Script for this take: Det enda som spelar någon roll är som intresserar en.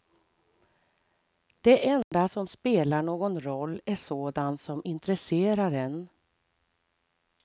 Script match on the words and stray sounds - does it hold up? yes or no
no